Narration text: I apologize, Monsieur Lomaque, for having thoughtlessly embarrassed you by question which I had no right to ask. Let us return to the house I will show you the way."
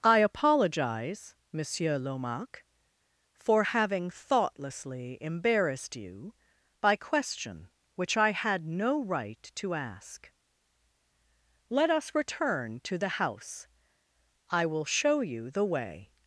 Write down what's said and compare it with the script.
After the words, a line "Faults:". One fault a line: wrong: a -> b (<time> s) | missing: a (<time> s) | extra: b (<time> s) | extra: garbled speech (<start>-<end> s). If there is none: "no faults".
I apologize, Monsieur Lomaque, for having thoughtlessly embarrassed you by question which I had no right to ask. Let us return to the house I will show you the way."
Faults:
no faults